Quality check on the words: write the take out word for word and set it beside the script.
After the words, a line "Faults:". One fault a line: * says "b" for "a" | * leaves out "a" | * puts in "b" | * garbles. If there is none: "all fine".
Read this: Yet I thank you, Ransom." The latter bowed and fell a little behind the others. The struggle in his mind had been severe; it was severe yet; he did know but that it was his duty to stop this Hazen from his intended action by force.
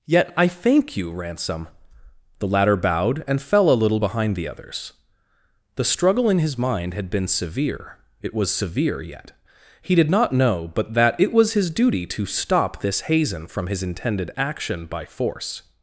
Yet I thank you, Ransom." The latter bowed and fell a little behind the others. The struggle in his mind had been severe; it was severe yet; he did not know but that it was his duty to stop this Hazen from his intended action by force.
Faults:
* puts in "not"